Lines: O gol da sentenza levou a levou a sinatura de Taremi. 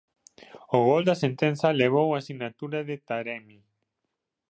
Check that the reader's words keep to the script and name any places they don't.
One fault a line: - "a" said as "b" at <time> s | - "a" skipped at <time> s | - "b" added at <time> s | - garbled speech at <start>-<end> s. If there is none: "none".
- "levou a" skipped at 2.2 s